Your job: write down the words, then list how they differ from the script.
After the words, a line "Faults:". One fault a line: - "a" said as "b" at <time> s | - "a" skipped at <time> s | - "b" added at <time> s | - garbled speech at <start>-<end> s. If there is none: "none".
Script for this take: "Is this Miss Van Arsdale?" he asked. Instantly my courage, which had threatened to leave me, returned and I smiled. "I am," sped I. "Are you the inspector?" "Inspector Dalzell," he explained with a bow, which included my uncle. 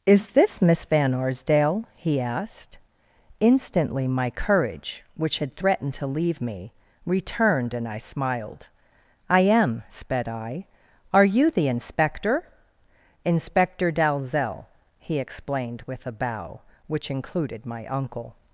"Is this Miss Van Arsdale?" he asked. Instantly my courage, which had threatened to leave me, returned and I smiled. "I am," sped I. "Are you the inspector?" "Inspector Dalzell," he explained with a bow, which included my uncle.
Faults:
none